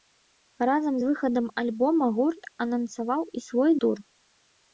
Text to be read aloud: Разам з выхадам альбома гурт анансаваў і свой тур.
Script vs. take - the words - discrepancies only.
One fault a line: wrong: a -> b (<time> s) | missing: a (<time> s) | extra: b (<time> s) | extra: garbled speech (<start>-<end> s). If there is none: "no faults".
no faults